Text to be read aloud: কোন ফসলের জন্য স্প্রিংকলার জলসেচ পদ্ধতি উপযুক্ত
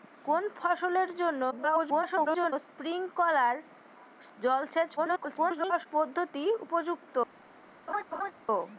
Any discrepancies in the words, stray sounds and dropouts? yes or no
yes